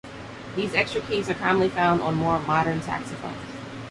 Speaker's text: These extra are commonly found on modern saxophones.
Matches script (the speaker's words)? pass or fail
fail